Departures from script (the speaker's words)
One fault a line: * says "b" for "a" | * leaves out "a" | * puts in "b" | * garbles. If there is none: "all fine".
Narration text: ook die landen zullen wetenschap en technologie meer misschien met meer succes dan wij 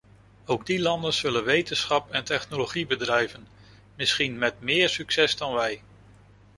* says "bedrijven" for "meer"